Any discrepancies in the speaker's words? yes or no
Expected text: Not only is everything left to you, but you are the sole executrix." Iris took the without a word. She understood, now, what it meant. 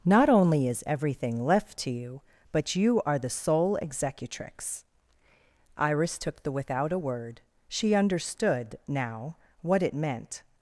no